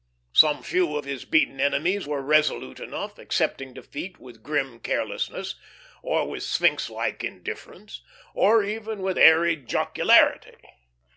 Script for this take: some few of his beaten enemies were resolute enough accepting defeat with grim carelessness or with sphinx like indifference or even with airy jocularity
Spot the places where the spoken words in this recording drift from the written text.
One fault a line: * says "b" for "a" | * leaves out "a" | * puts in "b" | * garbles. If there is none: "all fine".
all fine